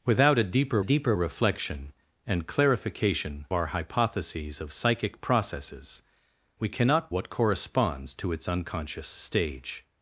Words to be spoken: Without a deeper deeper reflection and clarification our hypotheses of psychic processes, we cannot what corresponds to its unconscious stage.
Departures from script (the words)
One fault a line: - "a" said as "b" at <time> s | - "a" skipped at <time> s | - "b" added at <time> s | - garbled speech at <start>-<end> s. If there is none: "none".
none